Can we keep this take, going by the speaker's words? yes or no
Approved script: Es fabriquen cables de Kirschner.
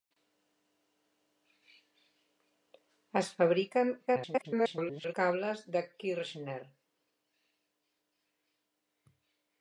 no